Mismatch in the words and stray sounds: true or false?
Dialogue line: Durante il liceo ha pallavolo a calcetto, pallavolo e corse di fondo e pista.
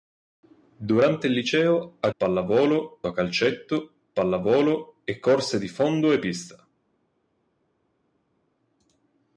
false